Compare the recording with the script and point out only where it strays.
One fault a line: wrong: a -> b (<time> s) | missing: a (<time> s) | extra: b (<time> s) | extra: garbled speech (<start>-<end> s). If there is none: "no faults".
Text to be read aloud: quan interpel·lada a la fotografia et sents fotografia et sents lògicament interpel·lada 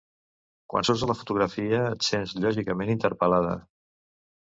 wrong: interpel·lada -> surts (0.9 s)
missing: fotografia et sents (2.3 s)